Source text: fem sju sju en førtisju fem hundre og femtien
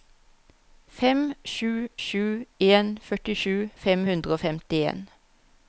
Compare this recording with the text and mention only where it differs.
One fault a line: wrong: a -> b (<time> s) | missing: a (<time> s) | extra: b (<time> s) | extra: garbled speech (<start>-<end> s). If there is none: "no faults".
no faults